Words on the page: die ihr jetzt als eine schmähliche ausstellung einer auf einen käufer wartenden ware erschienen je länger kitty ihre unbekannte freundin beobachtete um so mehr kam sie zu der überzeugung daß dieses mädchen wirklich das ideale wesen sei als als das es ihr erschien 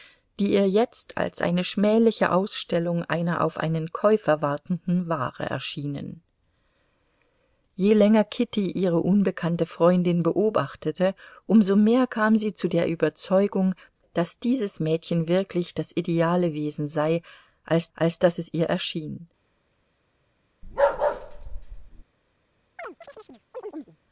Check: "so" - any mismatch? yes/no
no